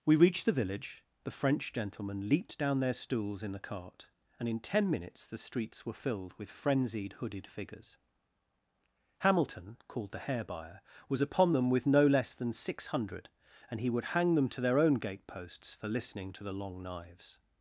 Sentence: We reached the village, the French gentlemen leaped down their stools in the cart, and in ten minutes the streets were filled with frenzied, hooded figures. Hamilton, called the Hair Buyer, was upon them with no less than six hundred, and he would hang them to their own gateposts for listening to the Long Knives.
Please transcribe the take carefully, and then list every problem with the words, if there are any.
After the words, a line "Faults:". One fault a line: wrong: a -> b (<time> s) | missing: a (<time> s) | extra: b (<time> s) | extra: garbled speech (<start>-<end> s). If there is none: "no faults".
We reached the village, the French gentlemen leaped down their stools in the cart, and in ten minutes the streets were filled with frenzied, hooded figures. Hamilton, called the Hair Buyer, was upon them with no less than six hundred, and he would hang them to their own gateposts for listening to the Long Knives.
Faults:
no faults